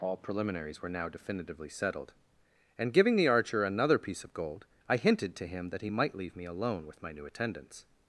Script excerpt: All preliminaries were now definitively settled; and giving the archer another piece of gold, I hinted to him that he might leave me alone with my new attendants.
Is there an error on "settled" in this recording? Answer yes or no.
no